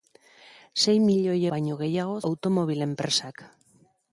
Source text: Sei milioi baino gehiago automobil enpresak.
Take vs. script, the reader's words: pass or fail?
pass